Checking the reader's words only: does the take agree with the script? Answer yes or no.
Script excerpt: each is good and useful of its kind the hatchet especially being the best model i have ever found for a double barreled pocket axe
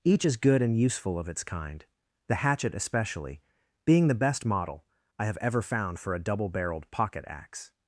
yes